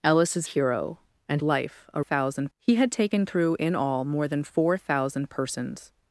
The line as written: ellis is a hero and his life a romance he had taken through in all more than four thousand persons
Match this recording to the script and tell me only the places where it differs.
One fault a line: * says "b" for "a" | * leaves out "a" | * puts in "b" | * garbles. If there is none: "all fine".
* leaves out "a"
* leaves out "his"
* says "thousand" for "romance"